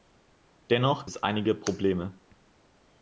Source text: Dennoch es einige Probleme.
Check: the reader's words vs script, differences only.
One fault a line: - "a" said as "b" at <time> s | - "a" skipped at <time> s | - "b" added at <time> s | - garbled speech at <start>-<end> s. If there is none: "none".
none